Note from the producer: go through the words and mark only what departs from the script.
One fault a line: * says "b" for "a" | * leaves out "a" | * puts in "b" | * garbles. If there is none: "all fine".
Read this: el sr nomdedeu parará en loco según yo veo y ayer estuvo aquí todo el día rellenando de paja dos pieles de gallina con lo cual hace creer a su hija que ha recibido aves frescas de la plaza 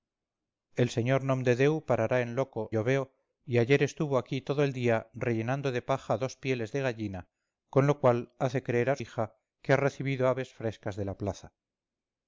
* leaves out "según"
* leaves out "su"